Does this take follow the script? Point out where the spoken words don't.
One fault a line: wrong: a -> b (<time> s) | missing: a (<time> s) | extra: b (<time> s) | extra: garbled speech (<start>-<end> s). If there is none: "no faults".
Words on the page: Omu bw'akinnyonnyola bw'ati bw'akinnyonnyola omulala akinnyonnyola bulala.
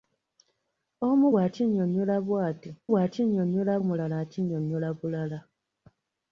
no faults